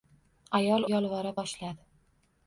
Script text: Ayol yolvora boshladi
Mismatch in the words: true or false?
false